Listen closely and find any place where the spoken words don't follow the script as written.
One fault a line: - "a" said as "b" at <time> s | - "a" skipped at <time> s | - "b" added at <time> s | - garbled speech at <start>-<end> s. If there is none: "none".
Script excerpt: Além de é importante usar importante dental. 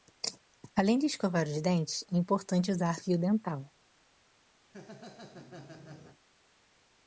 - "escovar os dentes" added at 1.1 s
- "importante" said as "fio" at 3.0 s